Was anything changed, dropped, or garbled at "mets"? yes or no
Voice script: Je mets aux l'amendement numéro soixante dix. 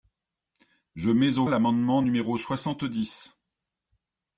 no